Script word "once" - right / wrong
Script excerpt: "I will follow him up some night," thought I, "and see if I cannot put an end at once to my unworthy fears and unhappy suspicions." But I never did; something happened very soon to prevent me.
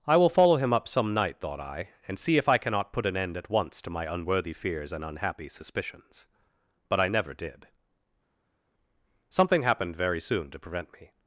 right